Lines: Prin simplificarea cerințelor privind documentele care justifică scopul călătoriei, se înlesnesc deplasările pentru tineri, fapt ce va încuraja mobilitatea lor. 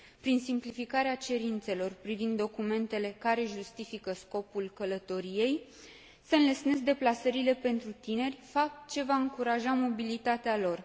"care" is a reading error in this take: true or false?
false